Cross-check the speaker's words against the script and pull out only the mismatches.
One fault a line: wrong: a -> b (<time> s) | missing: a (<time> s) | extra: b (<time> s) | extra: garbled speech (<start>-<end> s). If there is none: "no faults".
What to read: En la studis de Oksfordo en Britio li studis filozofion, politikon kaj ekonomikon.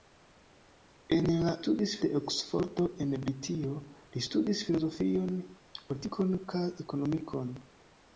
no faults